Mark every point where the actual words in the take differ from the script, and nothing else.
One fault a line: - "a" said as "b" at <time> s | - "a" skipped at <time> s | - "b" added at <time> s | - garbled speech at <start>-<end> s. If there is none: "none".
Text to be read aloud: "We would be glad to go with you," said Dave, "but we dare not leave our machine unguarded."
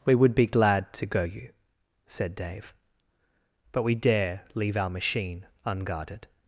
- "with" skipped at 1.2 s
- "not" skipped at 4.4 s